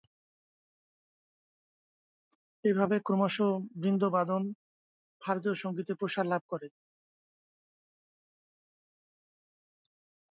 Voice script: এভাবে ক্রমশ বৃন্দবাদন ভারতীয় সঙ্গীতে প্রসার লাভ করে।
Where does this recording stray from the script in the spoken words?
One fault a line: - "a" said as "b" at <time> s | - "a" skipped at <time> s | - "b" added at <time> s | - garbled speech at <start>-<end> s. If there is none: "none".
none